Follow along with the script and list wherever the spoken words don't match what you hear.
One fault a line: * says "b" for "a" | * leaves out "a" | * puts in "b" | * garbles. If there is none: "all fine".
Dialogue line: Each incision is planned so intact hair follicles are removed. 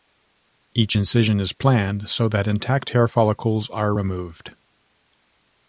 * puts in "that"